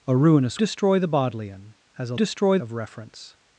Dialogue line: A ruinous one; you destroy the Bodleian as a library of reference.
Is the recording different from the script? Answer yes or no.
yes